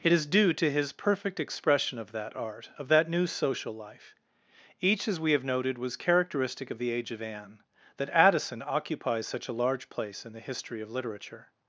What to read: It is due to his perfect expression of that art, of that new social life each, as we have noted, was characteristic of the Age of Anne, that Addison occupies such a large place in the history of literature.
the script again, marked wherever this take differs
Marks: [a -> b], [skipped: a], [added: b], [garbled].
It is due to his perfect expression of that art, of that new social life each, as we have noted, was characteristic of the Age of Anne, that Addison occupies such a large place in the history of literature.